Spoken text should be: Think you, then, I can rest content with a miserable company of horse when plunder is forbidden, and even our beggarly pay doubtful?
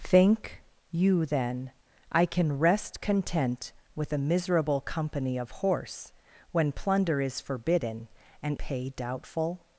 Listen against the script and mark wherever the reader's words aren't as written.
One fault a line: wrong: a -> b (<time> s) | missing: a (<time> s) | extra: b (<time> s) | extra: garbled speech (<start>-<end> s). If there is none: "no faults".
missing: even our beggarly (8.6 s)